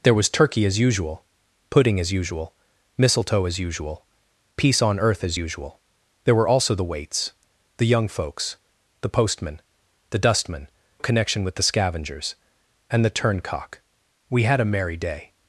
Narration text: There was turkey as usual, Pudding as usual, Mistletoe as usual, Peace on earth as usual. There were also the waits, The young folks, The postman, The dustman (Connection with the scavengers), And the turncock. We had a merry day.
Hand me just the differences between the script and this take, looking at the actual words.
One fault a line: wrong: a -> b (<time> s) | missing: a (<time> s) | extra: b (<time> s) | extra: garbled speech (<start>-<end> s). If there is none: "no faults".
no faults